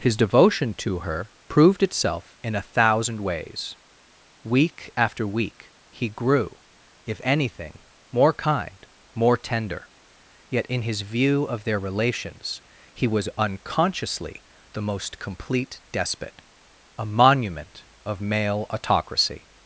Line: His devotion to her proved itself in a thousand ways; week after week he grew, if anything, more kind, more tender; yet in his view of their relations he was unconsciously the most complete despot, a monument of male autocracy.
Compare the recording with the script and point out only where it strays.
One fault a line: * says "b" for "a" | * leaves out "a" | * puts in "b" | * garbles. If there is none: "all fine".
all fine